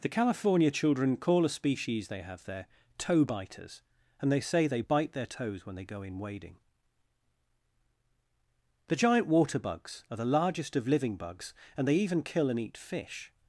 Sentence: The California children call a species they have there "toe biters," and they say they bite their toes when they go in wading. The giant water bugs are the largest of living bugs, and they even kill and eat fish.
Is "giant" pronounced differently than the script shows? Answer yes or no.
no